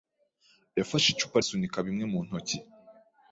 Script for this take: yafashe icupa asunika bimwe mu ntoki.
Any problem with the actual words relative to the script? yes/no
no